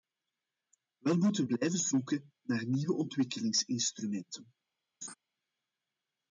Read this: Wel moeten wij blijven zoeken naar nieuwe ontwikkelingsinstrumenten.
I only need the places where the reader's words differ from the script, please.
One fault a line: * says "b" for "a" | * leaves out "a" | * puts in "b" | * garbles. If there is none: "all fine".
* leaves out "wij"